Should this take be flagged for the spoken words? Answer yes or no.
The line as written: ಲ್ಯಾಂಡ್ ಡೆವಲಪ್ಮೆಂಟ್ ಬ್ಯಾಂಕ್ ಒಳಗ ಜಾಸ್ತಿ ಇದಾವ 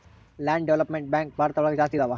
yes